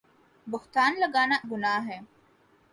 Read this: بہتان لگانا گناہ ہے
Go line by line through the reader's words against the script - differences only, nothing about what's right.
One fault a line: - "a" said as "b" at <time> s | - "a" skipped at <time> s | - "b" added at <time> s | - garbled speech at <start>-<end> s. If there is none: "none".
none